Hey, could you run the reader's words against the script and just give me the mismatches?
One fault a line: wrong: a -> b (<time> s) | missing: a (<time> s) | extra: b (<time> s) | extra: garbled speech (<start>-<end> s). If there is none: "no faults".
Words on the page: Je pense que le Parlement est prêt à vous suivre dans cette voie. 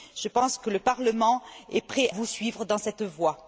missing: à (2.1 s)